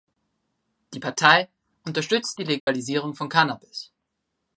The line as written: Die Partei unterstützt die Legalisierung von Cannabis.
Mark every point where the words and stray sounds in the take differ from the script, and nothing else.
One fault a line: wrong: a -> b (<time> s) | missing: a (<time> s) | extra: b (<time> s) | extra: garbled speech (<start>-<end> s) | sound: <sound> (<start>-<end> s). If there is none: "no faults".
sound: dropout (2.6-2.7 s)